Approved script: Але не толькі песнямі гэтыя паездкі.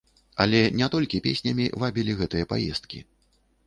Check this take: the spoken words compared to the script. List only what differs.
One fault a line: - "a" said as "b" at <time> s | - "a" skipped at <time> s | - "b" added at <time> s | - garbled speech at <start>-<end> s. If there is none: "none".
- "вабілі" added at 1.8 s